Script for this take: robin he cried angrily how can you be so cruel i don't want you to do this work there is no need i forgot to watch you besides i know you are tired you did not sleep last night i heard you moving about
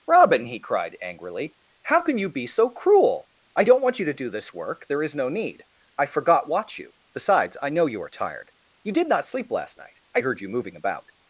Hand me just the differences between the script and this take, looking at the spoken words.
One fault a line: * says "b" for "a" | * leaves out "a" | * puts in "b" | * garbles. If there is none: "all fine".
* leaves out "to"